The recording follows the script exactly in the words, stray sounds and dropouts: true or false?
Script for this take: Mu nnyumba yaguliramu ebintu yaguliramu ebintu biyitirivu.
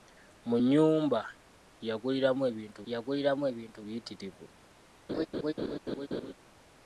false